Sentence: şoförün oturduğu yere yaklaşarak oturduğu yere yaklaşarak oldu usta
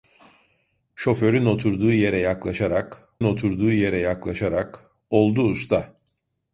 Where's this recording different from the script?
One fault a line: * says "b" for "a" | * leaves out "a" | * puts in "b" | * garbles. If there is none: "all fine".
all fine